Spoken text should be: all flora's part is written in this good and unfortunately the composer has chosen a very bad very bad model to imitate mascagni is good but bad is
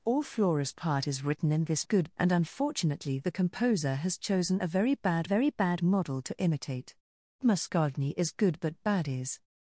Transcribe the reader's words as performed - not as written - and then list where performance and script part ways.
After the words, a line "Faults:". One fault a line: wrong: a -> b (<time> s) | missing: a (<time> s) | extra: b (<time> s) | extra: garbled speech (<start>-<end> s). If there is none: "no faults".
all flora's part is written in this good and unfortunately the composer has chosen a very bad very bad model to imitate mascagni is good but bad is
Faults:
no faults